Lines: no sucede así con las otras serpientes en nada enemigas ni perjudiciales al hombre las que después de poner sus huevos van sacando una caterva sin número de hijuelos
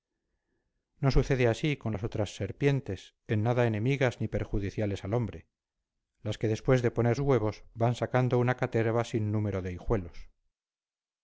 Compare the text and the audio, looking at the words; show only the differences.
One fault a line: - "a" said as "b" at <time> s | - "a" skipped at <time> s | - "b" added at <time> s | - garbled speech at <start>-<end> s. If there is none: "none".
- "sus" skipped at 7.2 s